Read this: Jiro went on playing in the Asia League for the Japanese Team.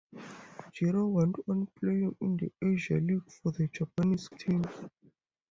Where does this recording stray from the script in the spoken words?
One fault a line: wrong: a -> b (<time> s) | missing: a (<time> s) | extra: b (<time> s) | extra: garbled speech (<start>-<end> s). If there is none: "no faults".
no faults